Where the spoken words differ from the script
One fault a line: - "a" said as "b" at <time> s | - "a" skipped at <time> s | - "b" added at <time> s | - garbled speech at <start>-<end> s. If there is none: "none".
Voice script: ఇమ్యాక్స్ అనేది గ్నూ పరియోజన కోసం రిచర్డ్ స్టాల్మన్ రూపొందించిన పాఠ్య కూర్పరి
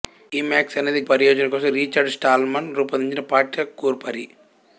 - "గ్నూ" skipped at 1.0 s